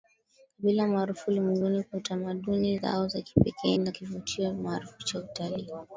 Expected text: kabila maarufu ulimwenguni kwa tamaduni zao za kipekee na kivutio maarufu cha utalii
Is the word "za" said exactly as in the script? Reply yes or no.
yes